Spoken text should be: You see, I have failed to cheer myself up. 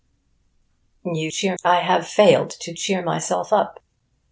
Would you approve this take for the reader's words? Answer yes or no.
no